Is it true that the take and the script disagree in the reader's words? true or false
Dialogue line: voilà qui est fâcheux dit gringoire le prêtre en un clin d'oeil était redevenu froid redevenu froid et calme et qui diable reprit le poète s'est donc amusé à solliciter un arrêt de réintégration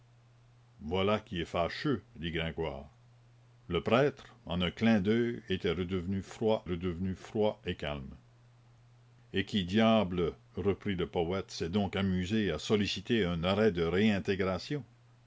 false